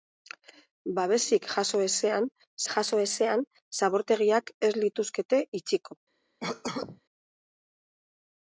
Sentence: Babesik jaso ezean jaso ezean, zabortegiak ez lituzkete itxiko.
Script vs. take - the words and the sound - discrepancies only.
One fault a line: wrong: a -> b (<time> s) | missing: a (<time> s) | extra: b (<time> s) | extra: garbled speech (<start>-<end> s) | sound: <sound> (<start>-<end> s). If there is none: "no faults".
sound: cough (6.4-7.0 s)